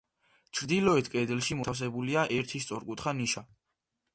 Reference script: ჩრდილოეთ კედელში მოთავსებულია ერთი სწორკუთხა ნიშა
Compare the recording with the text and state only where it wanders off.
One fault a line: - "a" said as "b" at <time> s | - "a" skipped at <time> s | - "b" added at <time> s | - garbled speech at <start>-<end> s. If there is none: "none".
none